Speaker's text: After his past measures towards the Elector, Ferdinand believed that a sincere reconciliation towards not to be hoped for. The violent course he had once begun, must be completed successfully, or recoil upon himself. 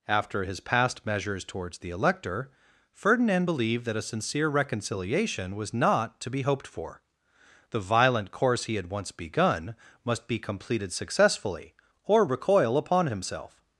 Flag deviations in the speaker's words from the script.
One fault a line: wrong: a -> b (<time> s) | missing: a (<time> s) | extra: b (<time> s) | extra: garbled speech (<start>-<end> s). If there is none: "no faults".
wrong: towards -> was (5.6 s)